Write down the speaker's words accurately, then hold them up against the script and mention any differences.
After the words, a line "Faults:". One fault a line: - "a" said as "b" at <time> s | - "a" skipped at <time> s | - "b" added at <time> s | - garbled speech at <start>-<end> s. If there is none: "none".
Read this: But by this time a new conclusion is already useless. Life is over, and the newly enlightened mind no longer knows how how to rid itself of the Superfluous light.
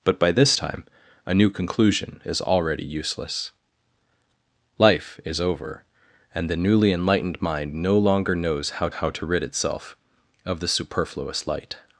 But by this time a new conclusion is already useless. Life is over, and the newly enlightened mind no longer knows how how to rid itself of the Superfluous light.
Faults:
none